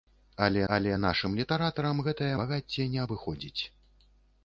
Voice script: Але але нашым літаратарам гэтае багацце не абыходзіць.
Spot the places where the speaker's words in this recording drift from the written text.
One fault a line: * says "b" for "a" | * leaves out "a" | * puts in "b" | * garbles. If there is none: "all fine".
all fine